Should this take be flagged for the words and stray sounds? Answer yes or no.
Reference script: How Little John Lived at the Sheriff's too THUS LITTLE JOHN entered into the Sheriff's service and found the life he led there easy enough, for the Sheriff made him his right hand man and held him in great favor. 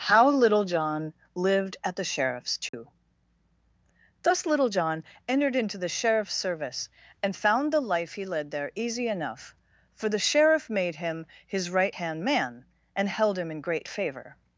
yes